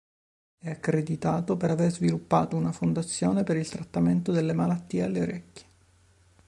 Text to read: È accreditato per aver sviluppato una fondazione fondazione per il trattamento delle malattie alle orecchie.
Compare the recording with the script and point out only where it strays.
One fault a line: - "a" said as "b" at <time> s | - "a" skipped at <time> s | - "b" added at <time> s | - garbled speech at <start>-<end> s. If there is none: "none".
- "fondazione" skipped at 3.4 s